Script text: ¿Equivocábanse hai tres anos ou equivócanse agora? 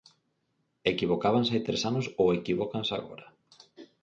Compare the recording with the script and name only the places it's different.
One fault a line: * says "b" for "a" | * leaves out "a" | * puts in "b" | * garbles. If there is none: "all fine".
all fine